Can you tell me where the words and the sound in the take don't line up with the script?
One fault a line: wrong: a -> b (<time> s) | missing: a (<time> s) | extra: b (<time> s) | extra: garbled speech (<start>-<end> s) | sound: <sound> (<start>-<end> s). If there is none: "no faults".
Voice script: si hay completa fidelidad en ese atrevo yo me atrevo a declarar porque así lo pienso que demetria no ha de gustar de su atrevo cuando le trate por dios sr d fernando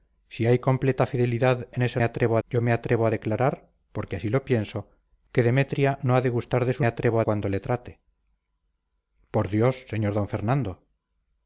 no faults